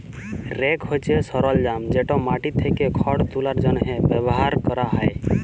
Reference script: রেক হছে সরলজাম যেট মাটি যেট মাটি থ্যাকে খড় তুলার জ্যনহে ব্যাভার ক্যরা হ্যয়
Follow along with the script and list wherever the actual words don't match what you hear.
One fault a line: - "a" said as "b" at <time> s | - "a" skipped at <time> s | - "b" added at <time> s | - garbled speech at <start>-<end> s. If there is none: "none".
- "যেট মাটি" skipped at 2.5 s